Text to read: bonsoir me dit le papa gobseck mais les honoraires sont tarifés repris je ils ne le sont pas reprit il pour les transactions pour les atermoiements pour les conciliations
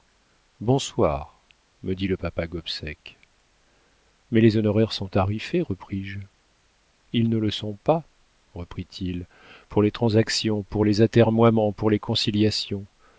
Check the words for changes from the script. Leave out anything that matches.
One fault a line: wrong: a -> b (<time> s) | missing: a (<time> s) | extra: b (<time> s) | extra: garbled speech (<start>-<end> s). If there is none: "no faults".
no faults